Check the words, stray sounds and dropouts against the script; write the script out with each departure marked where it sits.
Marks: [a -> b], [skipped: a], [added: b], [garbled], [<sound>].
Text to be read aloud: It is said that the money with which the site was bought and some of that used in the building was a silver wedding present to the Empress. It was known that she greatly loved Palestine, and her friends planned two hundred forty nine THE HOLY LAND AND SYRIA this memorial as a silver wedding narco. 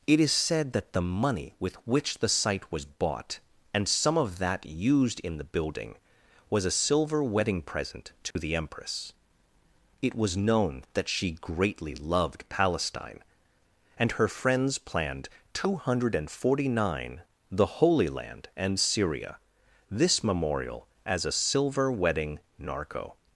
It is said that the money with which the site was bought and some of that used in the building was a silver wedding present to [dropout] the Empress. It was known that she greatly loved Palestine, and her friends planned two hundred forty nine THE HOLY LAND AND SYRIA this memorial as a silver wedding narco.